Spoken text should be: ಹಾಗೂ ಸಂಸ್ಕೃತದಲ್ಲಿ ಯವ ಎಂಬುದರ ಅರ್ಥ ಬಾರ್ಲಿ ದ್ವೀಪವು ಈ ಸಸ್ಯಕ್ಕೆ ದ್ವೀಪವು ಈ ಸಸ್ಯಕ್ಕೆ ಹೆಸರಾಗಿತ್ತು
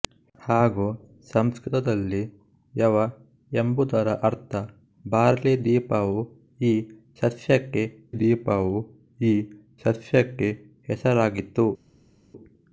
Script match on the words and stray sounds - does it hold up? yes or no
yes